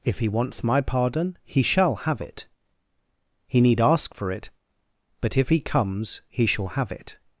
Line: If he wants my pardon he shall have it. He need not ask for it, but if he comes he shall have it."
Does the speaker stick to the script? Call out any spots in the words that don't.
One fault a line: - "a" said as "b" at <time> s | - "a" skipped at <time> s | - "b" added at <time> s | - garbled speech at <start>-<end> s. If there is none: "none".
- "not" skipped at 3.8 s